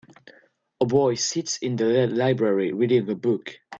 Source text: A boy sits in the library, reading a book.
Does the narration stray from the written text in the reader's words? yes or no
no